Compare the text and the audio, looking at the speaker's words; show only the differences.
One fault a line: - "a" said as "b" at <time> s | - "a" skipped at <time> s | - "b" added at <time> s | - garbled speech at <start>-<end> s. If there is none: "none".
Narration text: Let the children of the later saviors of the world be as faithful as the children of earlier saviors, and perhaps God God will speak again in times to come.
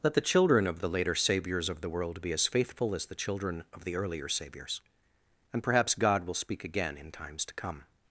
- "the" added at 3.9 s
- "God" skipped at 6.2 s